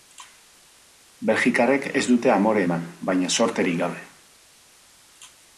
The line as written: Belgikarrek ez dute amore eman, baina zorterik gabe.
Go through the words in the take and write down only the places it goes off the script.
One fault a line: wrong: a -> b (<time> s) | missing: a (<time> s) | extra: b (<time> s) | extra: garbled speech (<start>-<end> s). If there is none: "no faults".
no faults